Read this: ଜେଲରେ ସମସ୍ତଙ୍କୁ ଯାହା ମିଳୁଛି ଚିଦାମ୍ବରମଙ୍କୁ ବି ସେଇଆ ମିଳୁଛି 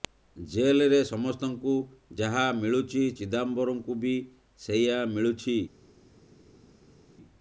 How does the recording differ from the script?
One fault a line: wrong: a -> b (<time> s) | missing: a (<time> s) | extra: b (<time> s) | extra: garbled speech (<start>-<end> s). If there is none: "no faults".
no faults